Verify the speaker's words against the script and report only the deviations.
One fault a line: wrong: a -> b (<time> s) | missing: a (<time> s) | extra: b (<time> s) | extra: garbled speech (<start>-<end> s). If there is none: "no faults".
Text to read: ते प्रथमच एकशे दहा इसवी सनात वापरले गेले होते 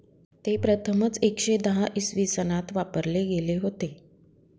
no faults